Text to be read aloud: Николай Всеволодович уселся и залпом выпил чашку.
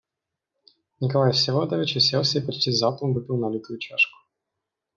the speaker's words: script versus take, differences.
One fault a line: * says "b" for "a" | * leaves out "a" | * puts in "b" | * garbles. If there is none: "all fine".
* puts in "почти"
* puts in "налитую"